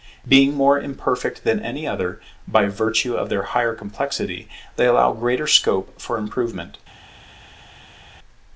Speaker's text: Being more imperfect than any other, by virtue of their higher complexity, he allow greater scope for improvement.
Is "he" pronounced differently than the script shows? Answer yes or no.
yes